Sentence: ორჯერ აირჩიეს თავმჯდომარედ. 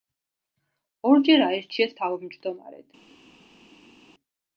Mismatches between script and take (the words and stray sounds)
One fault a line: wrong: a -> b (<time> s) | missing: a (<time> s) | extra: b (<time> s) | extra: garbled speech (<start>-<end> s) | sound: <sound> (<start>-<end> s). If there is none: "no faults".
no faults